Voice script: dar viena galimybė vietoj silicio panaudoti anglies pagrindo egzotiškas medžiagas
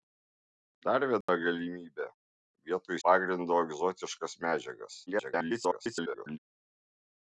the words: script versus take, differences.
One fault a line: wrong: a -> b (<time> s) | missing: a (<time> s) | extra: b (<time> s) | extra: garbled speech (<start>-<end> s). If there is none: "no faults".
missing: silicio panaudoti anglies (3.0 s)
extra: garbled speech (5.1-6.4 s)